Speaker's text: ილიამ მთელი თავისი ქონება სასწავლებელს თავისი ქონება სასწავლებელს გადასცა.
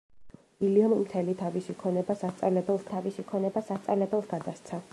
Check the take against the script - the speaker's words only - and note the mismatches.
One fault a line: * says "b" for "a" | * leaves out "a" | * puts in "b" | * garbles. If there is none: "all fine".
all fine